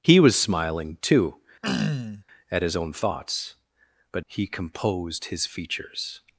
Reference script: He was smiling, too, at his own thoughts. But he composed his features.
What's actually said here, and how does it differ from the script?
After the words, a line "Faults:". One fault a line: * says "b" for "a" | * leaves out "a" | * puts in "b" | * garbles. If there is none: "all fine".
He was smiling, too, at his own thoughts. But he composed his features.
Faults:
all fine